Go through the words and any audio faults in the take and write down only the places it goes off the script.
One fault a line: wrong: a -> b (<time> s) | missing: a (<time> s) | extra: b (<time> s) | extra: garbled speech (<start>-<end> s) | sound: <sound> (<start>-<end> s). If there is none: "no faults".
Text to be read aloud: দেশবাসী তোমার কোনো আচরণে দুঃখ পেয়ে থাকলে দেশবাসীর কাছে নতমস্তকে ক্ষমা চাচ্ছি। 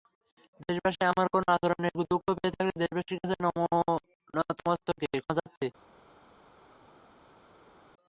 wrong: তোমার -> আমার (1.1 s)